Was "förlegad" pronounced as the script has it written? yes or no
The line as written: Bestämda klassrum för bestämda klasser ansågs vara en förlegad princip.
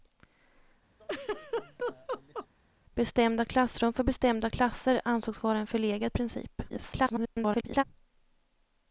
yes